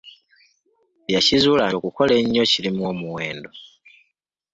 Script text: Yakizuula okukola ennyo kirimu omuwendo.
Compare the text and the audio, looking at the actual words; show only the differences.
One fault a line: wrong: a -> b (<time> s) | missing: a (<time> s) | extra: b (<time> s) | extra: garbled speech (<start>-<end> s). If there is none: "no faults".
no faults